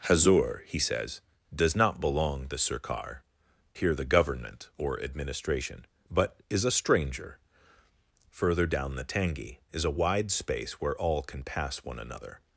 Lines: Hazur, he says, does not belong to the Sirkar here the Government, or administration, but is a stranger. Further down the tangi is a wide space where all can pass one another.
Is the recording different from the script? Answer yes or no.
yes